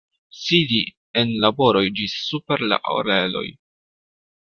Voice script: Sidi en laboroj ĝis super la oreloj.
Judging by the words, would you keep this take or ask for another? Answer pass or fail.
pass